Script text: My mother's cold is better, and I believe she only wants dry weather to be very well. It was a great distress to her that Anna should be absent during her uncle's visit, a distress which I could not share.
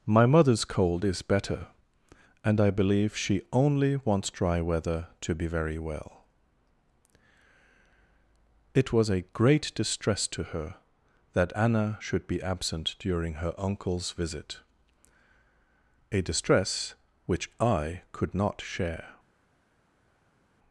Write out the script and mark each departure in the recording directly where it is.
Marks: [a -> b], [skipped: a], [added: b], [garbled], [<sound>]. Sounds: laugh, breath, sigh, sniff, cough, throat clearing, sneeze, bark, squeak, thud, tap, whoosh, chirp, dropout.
My mother's cold is better, and I believe she only wants dry weather to be very well. It was a great distress to her that Anna should be absent during her uncle's visit, a distress which I could not share.